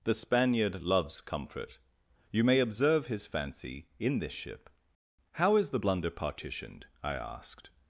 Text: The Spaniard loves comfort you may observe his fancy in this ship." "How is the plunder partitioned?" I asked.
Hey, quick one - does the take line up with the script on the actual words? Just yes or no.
no